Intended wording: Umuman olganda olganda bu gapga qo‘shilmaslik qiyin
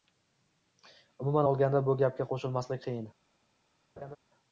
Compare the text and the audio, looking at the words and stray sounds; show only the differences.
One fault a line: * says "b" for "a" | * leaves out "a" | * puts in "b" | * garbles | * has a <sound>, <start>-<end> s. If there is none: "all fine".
* leaves out "olganda"
* has a laugh, 4.0-4.2 s